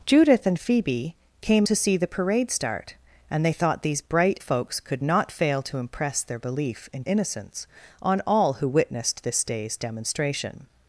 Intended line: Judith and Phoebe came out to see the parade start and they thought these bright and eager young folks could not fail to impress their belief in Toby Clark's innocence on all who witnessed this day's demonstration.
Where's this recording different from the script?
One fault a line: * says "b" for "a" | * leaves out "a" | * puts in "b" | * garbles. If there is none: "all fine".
* leaves out "out"
* leaves out "and eager young"
* leaves out "Toby Clark's"